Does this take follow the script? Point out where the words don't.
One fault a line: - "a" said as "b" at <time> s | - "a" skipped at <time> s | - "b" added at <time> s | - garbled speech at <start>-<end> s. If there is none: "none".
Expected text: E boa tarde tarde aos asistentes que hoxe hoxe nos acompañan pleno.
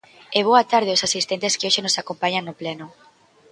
- "tarde" skipped at 0.9 s
- "hoxe" skipped at 1.8 s
- "no" added at 2.5 s